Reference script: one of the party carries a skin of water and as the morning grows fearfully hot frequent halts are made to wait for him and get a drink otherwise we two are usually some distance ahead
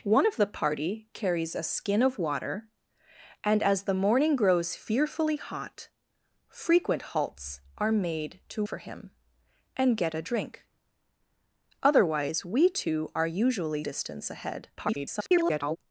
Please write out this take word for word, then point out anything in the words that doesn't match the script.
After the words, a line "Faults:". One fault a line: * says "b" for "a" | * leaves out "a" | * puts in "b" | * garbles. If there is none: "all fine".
one of the party carries a skin of water and as the morning grows fearfully hot frequent halts are made to for him and get a drink otherwise we two are usually distance ahead [garbled]
Faults:
* leaves out "wait"
* leaves out "some"
* garbles